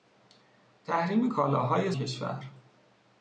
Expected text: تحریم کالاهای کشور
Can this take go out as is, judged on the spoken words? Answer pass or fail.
pass